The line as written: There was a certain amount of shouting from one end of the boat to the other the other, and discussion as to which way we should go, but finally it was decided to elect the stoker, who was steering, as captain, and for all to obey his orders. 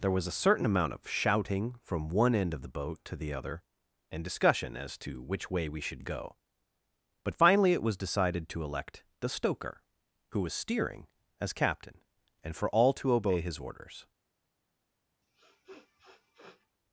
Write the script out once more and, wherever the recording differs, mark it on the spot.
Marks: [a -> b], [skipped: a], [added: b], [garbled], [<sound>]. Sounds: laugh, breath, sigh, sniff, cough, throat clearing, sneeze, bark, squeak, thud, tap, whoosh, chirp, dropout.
There was a certain amount of shouting from one end of the boat to the other [skipped: the other,] and discussion as to which way we should go, but finally it was decided to elect the stoker, who was steering, as captain, and for all to obey his orders. [sniff]